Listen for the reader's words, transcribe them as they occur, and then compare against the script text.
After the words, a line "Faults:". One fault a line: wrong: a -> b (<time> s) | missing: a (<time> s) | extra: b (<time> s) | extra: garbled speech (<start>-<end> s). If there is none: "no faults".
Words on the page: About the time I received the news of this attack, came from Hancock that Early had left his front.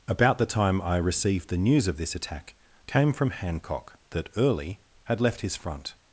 About the time I received the news of this attack, came from Hancock that Early had left his front.
Faults:
no faults